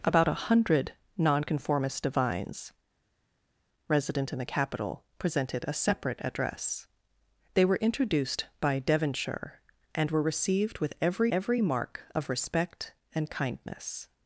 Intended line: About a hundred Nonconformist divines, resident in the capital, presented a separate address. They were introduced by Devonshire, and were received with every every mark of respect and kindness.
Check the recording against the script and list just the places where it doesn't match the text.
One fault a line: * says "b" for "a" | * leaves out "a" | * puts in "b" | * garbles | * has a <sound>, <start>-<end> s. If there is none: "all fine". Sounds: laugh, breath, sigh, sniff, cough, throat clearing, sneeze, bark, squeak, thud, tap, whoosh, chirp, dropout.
all fine